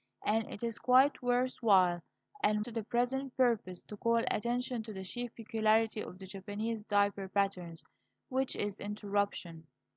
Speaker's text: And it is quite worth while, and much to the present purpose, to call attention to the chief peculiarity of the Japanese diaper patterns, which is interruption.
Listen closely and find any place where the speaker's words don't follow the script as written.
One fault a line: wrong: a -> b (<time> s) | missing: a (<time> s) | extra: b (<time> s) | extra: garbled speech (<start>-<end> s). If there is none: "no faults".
missing: much (2.6 s)